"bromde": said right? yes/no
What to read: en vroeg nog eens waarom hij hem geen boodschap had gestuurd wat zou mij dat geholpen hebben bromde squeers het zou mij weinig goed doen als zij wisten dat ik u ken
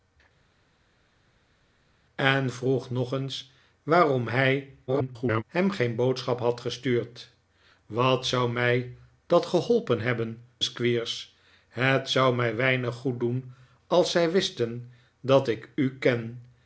no